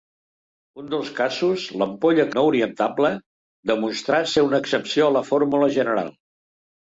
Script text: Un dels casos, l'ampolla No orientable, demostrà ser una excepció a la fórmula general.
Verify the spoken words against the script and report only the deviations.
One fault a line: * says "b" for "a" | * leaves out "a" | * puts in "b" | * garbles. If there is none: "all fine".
all fine